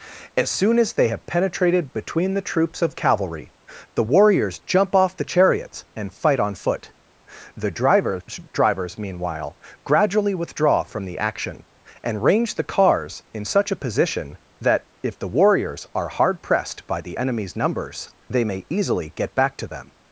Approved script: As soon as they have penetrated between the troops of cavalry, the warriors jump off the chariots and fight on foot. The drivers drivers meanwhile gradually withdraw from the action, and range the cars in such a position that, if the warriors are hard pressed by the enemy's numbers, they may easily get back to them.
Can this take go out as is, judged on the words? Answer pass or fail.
pass